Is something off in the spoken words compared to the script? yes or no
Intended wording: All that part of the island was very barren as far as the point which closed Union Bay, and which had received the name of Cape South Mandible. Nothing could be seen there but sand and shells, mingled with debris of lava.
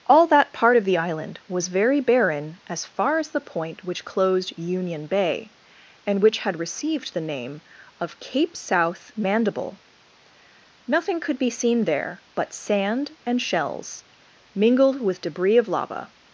no